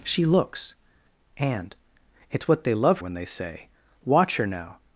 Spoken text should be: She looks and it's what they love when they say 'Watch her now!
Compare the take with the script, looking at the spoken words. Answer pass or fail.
pass